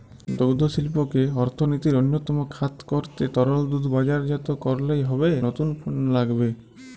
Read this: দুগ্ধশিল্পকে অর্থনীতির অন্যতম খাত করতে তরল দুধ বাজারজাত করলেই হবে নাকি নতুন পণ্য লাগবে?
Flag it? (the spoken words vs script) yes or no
yes